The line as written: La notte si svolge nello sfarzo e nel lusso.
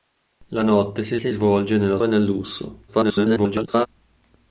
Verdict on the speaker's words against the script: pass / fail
fail